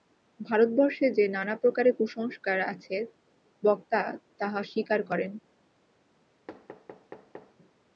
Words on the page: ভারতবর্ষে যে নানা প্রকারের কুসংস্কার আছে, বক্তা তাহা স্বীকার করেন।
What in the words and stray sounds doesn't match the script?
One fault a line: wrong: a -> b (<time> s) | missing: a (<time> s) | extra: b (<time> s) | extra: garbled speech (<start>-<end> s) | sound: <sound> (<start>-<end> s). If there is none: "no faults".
sound: thud (6.5-7.6 s)